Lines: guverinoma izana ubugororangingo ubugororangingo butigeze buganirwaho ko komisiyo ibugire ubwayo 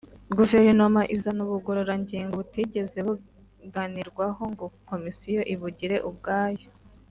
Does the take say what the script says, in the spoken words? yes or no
no